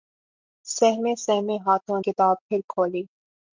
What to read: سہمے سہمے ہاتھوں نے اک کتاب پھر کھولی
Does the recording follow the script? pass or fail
fail